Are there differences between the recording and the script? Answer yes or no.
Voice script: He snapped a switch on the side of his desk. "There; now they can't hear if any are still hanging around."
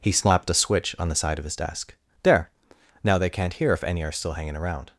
yes